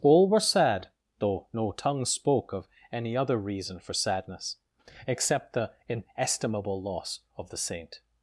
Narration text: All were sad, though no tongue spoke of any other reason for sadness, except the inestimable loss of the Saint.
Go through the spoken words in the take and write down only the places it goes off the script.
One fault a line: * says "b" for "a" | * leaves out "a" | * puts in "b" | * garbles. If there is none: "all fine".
all fine